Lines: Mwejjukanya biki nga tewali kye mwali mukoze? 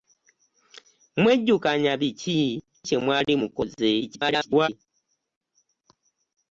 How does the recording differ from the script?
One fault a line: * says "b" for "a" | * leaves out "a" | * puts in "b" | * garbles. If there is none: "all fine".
* leaves out "nga tewali"
* garbles